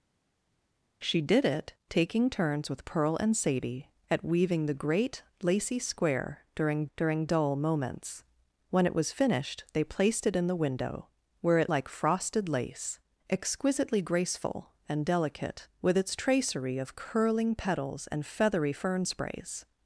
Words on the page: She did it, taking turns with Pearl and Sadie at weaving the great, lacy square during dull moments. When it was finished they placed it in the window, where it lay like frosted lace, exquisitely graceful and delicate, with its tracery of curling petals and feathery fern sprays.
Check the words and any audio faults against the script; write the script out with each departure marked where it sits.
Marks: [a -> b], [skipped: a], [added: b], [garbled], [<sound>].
She did it, taking turns with Pearl and Sadie at weaving the great, lacy square during [added: during] dull moments. When it was finished they placed it in the window, where it [skipped: lay] like frosted lace, exquisitely graceful and delicate, with its tracery of curling petals and feathery fern sprays.